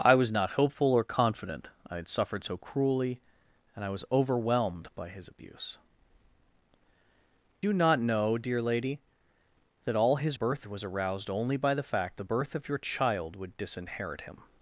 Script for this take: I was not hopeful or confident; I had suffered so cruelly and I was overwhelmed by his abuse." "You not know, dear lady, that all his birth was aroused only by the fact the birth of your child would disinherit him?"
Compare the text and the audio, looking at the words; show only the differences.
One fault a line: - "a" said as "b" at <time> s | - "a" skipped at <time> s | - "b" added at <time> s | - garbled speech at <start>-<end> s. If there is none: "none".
none